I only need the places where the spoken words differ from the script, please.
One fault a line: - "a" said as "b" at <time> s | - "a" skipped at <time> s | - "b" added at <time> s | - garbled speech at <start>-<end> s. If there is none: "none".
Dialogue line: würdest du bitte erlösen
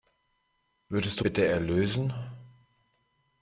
none